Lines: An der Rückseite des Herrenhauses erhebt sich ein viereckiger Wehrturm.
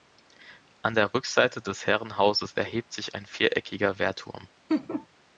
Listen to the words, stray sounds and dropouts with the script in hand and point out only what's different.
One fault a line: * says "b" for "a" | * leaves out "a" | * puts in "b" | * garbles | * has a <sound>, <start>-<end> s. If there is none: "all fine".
* has a laugh, 4.7-5.1 s